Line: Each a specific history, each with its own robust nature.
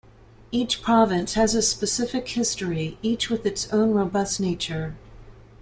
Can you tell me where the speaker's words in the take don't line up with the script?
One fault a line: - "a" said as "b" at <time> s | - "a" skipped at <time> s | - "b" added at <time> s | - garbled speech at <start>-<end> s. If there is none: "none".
- "province has" added at 0.8 s